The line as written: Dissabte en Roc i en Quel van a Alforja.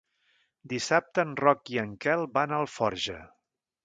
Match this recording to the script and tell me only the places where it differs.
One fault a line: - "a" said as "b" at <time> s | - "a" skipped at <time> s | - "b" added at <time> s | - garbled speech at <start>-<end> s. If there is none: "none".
none